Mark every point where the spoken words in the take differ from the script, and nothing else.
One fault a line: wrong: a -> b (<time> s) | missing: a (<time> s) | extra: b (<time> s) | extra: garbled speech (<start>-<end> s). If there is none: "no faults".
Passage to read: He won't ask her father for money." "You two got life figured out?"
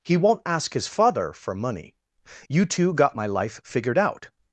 wrong: her -> his (0.7 s)
extra: my (3.2 s)